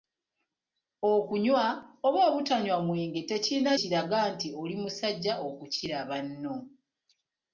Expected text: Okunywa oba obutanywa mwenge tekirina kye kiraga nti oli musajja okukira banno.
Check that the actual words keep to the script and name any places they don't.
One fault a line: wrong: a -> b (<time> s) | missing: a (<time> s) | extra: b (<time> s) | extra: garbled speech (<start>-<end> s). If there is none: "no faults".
missing: kye (3.7 s)